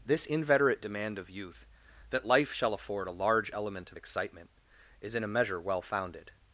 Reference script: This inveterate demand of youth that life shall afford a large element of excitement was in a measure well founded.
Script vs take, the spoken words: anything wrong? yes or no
yes